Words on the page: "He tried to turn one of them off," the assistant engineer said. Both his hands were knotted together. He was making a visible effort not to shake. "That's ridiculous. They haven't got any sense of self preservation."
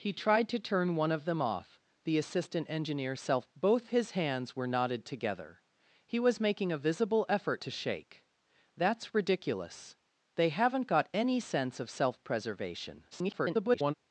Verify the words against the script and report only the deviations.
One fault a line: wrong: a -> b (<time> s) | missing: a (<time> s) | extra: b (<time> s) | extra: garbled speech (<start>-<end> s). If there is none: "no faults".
wrong: said -> self (3.2 s)
missing: not (7.6 s)
extra: garbled speech (13.1-13.9 s)